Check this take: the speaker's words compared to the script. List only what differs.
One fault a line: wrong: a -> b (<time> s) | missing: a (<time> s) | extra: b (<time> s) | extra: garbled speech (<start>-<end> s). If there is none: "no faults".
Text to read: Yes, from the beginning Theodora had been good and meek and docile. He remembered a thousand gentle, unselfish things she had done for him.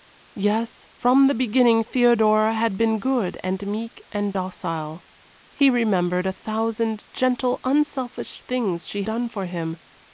missing: had (9.0 s)